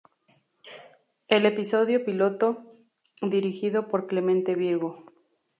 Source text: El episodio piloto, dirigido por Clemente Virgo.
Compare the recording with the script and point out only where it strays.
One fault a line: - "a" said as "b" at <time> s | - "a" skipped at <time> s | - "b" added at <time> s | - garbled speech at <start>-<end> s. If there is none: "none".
none